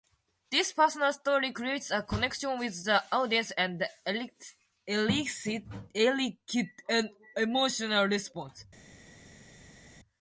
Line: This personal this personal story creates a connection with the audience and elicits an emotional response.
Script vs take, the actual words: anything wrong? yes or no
yes